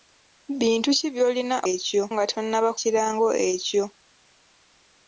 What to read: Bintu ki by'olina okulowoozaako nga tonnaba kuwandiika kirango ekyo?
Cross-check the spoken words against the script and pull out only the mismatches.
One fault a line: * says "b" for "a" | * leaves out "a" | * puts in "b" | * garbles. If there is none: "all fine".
* says "ekyo" for "okulowoozaako"
* leaves out "kuwandiika"